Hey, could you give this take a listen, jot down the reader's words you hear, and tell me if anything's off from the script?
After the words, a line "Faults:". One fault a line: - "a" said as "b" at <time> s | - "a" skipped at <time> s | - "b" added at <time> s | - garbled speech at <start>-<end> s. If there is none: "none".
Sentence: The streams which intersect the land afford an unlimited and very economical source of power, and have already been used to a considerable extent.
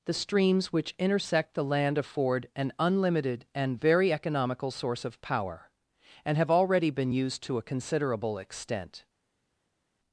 The streams which intersect the land afford an unlimited and very economical source of power, and have already been used to a considerable extent.
Faults:
none